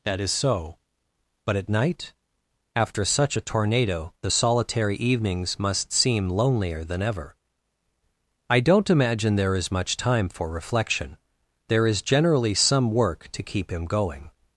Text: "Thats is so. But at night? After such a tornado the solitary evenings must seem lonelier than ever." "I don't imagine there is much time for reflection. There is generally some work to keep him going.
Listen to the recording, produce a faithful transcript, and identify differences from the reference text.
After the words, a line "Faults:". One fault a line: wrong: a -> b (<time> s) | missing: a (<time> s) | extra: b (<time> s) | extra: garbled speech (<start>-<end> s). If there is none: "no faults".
"That is so. But at night? After such a tornado the solitary evenings must seem lonelier than ever." "I don't imagine there is much time for reflection. There is generally some work to keep him going.
Faults:
wrong: Thats -> That (0.0 s)